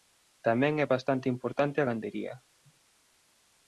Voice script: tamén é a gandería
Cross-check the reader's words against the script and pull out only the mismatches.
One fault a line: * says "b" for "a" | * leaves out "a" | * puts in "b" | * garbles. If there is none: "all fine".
* puts in "bastante importante"